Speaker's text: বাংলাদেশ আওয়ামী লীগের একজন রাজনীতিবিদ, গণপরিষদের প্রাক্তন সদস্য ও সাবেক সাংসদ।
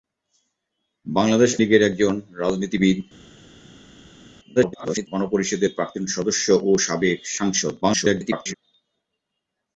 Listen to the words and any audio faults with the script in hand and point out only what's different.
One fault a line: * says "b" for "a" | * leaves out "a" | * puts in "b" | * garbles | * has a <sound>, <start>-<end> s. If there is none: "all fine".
* leaves out "আওয়ামী"
* garbles
* garbles